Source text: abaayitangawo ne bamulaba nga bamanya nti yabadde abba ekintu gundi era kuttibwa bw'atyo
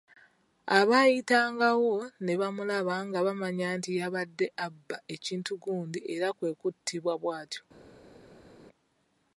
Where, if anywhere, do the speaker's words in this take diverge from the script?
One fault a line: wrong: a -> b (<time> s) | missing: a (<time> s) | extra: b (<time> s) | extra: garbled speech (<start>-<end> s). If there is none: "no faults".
extra: kwe (6.4 s)